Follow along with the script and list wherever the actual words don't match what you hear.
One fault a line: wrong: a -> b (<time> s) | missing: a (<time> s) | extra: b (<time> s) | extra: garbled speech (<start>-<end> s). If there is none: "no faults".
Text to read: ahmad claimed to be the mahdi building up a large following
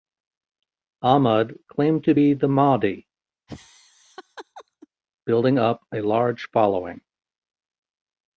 no faults